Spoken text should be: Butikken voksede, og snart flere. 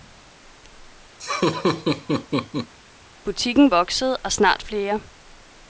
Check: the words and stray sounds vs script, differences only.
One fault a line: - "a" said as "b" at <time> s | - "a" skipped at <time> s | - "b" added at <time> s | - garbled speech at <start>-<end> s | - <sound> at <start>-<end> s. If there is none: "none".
- laugh at 1.2-2.7 s